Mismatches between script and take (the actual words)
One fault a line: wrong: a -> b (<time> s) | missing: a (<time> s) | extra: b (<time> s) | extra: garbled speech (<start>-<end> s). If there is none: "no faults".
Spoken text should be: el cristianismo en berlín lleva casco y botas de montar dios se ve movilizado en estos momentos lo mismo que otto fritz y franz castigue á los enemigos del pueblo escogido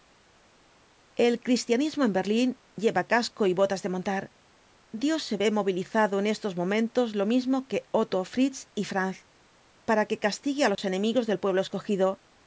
extra: para que (9.9 s)